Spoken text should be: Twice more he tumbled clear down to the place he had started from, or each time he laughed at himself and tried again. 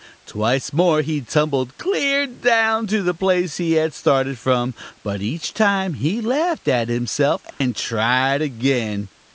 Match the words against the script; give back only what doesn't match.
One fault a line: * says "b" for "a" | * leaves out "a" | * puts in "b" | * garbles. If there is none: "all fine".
* says "but" for "or"